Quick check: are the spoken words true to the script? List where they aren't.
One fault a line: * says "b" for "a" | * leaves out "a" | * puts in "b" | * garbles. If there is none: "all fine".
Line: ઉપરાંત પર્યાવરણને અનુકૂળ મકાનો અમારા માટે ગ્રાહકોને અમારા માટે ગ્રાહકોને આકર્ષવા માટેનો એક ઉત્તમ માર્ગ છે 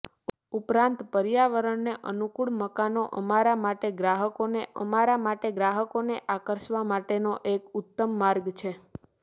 all fine